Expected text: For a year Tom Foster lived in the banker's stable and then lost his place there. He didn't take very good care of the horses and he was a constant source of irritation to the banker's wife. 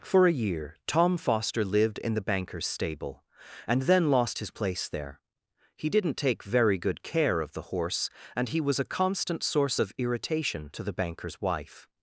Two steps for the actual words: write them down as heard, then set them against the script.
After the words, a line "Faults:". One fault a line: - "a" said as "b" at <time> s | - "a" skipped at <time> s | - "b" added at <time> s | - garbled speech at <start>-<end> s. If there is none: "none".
For a year Tom Foster lived in the banker's stable and then lost his place there. He didn't take very good care of the horse and he was a constant source of irritation to the banker's wife.
Faults:
- "horses" said as "horse" at 7.7 s